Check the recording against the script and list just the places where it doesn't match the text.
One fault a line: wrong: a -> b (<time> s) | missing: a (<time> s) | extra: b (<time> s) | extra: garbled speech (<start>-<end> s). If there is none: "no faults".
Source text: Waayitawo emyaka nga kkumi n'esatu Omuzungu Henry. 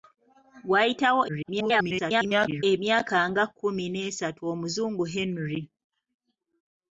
extra: garbled speech (1.3-2.6 s)